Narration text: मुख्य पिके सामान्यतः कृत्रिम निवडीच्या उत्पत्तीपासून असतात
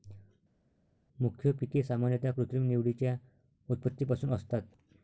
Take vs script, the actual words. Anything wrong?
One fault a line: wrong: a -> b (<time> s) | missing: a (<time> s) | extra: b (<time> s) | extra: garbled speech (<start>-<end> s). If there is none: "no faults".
no faults